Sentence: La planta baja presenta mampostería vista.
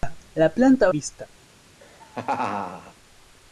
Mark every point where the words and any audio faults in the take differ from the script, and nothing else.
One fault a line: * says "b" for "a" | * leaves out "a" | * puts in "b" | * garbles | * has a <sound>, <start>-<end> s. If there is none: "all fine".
* leaves out "baja presenta mampostería"
* has a laugh, 1.8-2.9 s